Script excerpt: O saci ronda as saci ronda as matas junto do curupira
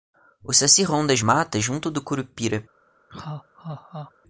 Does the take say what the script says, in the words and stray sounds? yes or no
no